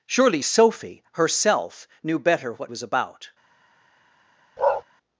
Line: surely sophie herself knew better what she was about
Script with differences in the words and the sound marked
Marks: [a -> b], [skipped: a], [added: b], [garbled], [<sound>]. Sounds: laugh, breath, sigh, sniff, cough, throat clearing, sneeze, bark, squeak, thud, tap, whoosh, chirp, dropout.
surely sophie herself knew better what [skipped: she] was about [bark]